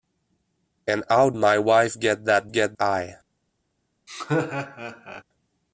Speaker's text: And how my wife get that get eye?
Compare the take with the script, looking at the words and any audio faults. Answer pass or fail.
fail